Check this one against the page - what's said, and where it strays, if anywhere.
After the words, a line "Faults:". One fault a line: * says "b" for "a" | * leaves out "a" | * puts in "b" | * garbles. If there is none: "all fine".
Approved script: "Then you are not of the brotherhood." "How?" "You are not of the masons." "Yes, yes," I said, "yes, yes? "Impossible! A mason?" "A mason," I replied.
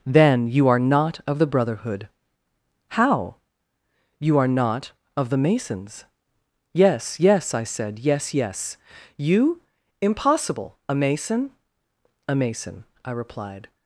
"Then you are not of the brotherhood." "How?" "You are not of the masons." "Yes, yes," I said, "yes, yes." "You? Impossible! A mason?" "A mason," I replied.
Faults:
* puts in "You"